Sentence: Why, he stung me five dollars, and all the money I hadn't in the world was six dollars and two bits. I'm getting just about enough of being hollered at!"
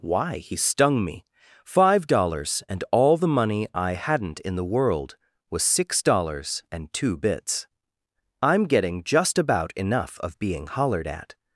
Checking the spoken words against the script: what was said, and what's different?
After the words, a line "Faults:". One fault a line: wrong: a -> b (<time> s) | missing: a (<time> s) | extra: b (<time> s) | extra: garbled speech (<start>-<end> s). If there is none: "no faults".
Why, he stung me five dollars, and all the money I hadn't in the world was six dollars and two bits. I'm getting just about enough of being hollered at!"
Faults:
no faults